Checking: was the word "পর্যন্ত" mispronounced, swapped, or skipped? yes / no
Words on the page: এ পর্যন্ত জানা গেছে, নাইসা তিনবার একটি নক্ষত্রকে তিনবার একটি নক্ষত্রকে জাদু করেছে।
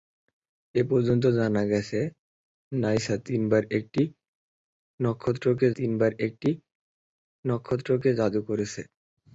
no